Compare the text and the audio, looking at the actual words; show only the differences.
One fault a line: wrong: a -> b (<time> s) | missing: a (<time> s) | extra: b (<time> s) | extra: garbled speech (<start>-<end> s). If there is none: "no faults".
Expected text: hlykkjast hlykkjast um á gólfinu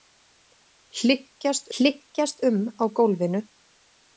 no faults